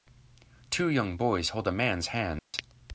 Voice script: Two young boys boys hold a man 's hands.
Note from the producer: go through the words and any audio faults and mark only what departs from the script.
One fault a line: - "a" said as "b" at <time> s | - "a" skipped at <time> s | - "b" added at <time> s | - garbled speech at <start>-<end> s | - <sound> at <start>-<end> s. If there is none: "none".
- "boys" skipped at 1.5 s
- dropout at 2.4-2.5 s